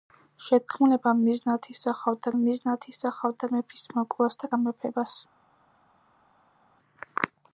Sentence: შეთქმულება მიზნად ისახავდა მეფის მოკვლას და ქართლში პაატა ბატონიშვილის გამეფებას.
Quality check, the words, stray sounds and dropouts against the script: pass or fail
fail